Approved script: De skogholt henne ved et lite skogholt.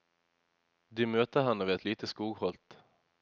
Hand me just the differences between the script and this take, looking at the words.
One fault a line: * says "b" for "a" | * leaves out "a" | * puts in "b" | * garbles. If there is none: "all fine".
* says "møter" for "skogholt"